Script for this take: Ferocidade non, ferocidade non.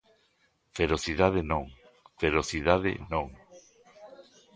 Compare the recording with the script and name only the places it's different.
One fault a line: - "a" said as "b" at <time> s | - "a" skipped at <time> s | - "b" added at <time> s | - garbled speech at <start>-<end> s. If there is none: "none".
none